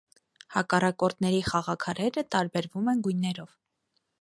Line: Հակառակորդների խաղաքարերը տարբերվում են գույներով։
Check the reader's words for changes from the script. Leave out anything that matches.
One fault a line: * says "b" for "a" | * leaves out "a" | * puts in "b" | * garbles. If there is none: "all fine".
all fine